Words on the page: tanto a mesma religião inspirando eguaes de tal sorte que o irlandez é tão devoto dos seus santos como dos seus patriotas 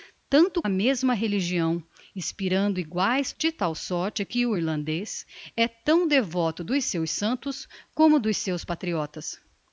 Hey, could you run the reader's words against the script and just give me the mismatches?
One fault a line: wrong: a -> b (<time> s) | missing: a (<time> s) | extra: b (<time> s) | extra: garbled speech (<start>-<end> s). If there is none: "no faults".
no faults